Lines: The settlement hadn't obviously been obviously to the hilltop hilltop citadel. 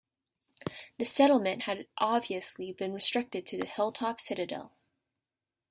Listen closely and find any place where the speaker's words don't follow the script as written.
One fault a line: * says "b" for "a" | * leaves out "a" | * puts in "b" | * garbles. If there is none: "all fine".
* says "had" for "hadn't"
* says "restricted" for "obviously"
* leaves out "hilltop"